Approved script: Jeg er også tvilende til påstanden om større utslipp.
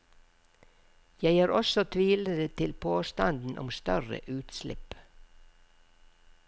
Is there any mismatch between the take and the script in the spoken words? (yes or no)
no